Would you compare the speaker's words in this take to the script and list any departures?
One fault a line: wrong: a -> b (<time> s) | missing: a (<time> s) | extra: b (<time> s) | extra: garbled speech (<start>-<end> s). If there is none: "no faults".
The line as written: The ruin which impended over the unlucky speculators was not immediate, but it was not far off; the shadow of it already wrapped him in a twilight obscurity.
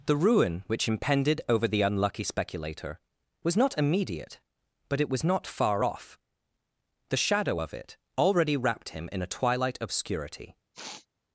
wrong: speculators -> speculator (2.2 s)